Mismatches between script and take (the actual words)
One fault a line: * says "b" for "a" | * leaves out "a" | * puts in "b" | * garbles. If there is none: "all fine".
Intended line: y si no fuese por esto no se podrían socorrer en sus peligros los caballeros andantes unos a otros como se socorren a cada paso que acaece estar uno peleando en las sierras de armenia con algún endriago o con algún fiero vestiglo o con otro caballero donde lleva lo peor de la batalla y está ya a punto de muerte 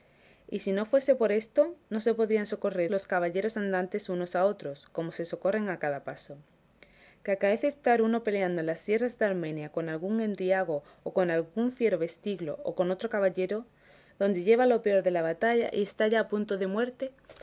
* leaves out "en sus peligros"